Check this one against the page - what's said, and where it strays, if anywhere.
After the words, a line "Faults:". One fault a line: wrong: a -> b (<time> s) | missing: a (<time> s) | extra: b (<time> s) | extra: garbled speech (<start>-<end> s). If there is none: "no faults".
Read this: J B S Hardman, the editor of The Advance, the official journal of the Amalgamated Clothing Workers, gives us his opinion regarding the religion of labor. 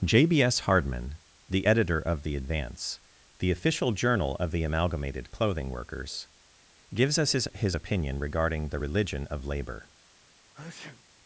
J B S Hardman, the editor of The Advance, the official journal of the Amalgamated Clothing Workers, gives us his his opinion regarding the religion of labor.
Faults:
extra: his (7.5 s)